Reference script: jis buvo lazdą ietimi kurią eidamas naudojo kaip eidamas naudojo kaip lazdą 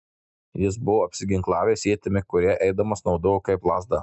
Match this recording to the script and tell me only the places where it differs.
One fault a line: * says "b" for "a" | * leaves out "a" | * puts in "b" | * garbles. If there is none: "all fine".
* says "apsiginklavęs" for "lazdą"
* leaves out "eidamas naudojo kaip"